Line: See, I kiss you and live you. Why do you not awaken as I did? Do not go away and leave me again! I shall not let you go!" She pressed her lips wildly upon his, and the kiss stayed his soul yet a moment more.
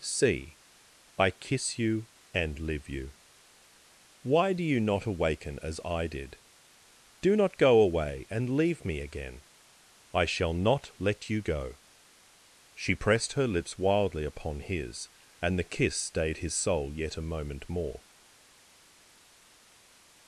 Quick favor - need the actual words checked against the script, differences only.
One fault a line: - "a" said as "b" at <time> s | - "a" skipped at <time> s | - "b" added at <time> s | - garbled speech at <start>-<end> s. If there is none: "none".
none